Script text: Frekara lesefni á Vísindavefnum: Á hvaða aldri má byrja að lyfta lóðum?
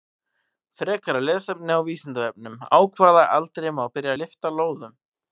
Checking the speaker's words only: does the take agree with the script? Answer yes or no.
yes